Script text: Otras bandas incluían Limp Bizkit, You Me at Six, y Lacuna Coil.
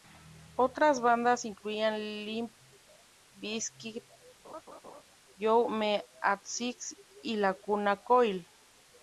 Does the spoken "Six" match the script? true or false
true